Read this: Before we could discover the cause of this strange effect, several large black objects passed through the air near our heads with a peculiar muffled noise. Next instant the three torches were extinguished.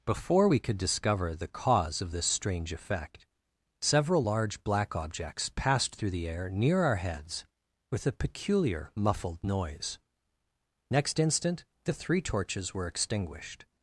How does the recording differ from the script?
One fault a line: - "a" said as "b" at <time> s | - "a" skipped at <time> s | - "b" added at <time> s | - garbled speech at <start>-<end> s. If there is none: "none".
none